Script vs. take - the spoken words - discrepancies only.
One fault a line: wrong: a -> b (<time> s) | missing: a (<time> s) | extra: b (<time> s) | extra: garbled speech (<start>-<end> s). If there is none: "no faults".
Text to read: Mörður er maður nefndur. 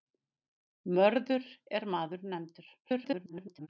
extra: garbled speech (2.8-3.7 s)